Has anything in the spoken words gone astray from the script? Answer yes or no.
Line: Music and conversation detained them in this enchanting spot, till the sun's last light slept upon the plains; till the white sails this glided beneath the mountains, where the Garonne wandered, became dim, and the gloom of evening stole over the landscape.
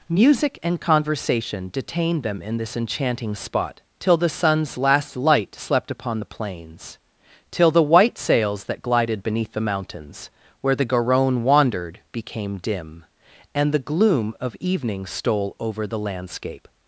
yes